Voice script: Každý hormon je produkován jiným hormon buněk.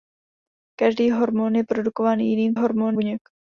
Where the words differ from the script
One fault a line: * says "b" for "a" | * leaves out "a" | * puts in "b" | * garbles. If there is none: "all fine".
all fine